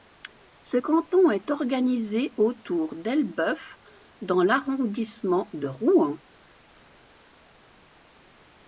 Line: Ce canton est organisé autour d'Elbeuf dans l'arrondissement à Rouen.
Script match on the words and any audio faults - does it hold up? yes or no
no